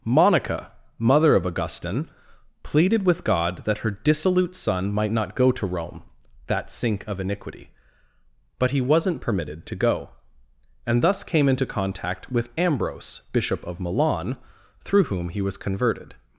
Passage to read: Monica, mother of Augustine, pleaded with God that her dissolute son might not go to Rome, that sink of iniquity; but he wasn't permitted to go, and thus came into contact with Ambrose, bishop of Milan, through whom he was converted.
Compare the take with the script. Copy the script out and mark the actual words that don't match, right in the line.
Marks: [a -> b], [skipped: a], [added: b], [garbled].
Monica, mother of Augustine, pleaded with God that her dissolute son might not go to Rome, that sink of iniquity; but he wasn't permitted to go, and thus came into contact with Ambrose, bishop of Milan, through whom he was converted.